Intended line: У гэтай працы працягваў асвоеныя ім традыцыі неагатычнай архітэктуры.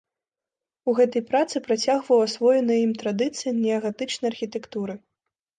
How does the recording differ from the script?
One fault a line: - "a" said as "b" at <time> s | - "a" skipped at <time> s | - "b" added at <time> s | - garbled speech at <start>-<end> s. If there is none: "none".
none